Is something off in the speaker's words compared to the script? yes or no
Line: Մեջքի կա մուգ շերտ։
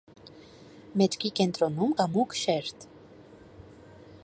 yes